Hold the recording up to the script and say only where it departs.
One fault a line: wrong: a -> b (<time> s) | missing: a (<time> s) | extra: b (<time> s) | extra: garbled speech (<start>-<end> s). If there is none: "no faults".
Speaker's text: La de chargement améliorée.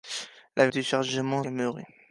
no faults